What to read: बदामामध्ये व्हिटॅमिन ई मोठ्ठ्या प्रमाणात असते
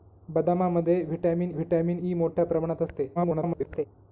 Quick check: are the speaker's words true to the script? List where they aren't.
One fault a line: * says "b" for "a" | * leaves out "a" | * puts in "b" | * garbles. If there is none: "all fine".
* puts in "व्हिटॅमिन"
* garbles